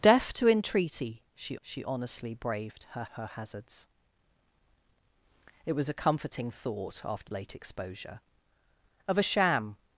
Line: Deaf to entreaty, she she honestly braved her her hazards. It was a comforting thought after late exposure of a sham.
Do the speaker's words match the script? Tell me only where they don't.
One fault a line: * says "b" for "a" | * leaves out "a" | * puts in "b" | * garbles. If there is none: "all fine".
all fine